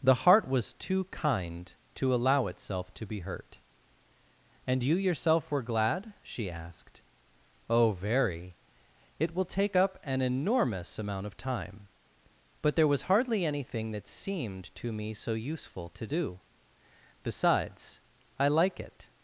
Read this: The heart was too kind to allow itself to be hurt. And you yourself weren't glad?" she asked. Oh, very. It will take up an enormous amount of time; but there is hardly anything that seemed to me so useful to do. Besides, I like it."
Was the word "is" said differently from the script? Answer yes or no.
yes